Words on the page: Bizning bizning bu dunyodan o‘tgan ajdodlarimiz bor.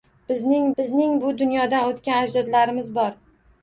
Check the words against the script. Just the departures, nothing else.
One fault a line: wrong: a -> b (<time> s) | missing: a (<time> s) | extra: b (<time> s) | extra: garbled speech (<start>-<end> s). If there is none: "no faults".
no faults